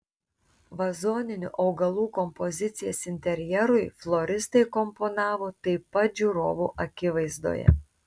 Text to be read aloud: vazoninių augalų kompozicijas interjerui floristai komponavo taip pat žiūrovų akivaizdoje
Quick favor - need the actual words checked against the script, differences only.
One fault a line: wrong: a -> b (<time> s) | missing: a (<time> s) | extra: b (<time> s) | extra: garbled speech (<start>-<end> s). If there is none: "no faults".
no faults